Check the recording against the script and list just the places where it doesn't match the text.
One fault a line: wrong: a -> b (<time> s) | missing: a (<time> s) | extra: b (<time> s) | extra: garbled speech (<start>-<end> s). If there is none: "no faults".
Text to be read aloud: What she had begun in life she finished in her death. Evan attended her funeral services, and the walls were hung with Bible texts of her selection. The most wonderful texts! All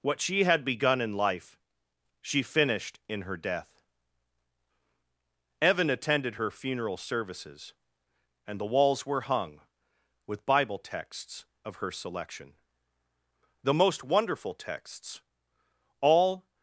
no faults